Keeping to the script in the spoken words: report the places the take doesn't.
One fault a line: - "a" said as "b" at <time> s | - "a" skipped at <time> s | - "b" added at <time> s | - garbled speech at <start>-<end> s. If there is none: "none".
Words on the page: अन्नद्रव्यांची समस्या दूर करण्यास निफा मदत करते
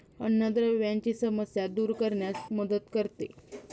- "निफा" skipped at 2.4 s